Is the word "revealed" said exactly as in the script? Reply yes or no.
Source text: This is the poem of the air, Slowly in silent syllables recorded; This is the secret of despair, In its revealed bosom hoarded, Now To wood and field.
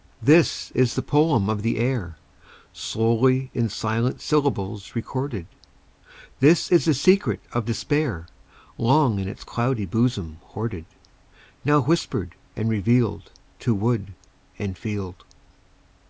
no